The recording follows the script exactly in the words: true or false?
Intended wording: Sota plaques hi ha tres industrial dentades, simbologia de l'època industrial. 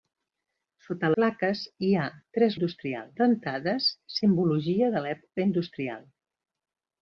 true